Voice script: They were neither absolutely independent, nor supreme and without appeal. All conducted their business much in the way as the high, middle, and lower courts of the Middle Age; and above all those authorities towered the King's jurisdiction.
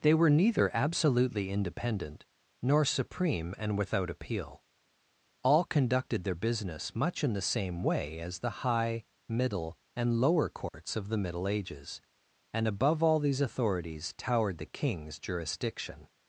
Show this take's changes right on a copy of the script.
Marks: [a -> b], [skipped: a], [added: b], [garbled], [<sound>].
They were neither absolutely independent, nor supreme and without appeal. All conducted their business much in the [added: same] way as the high, middle, and lower courts [dropout] of the Middle [Age; -> Ages] and above all [those -> these] authorities towered the King's jurisdiction.